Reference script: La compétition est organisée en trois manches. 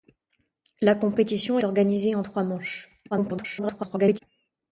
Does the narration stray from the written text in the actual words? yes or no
yes